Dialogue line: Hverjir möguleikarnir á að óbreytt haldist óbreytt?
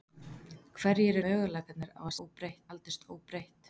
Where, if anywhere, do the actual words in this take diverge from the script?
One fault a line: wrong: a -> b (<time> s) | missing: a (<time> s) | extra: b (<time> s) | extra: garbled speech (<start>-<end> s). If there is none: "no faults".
no faults